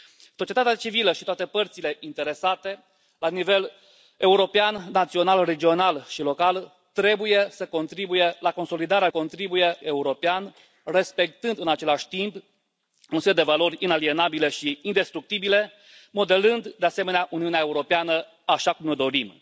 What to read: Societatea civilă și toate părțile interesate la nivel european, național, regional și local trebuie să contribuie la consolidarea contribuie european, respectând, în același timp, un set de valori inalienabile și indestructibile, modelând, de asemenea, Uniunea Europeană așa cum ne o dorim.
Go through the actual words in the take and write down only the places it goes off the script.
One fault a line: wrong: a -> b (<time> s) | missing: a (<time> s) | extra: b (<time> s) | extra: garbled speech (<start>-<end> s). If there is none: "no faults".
no faults